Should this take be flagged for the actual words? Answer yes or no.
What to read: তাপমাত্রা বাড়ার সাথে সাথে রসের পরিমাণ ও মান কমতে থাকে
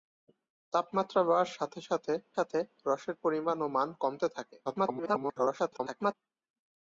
yes